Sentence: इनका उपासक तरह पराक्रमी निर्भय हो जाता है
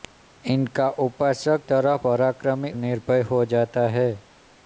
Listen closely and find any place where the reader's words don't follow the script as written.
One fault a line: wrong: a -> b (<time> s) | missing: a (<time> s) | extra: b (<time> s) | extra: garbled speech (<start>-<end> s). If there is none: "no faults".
no faults